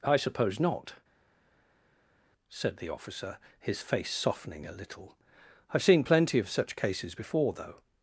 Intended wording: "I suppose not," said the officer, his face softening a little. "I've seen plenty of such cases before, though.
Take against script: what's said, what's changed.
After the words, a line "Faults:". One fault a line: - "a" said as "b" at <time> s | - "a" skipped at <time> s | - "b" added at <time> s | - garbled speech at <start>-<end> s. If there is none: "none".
"I suppose not," said the officer, his face softening a little. "I've seen plenty of such cases before, though.
Faults:
none